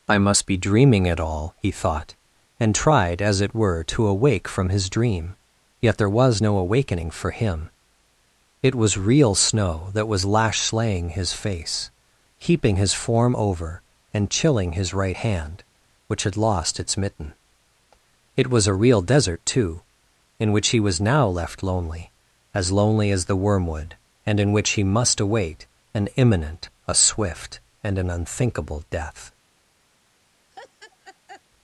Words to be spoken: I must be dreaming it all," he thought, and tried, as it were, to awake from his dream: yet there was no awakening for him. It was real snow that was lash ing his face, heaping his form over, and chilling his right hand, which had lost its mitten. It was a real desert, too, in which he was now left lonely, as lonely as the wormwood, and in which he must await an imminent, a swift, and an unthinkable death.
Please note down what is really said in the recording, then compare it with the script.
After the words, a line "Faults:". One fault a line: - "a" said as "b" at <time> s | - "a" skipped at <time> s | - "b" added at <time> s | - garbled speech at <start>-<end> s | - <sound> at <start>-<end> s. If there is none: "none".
I must be dreaming it all," he thought, and tried, as it were, to awake from his dream: yet there was no awakening for him. It was real snow that was lash slaying his face, heaping his form over, and chilling his right hand, which had lost its mitten. It was a real desert, too, in which he was now left lonely, as lonely as the wormwood, and in which he must await an imminent, a swift, and an unthinkable death.
Faults:
- "ing" said as "slaying" at 10.6 s
- laugh at 30.5-31.4 s